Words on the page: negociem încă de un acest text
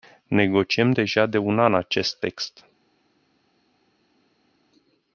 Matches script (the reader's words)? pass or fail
fail